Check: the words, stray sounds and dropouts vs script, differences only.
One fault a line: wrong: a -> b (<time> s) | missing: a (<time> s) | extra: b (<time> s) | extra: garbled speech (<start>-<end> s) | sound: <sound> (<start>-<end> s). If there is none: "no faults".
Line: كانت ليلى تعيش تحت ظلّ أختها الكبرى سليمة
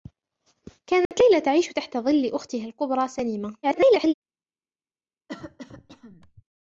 sound: dropout (1.1-1.1 s)
extra: garbled speech (3.6-4.1 s)
sound: cough (5.3-6.4 s)